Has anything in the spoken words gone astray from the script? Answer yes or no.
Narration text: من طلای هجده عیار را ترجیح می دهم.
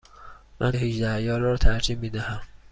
yes